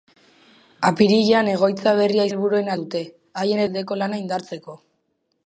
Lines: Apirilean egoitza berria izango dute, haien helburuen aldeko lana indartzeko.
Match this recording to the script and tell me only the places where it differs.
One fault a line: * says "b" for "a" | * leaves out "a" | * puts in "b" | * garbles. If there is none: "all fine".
* says "helburuen" for "izango"
* leaves out "helburuen"